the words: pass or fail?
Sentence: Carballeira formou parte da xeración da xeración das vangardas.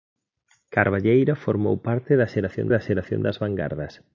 pass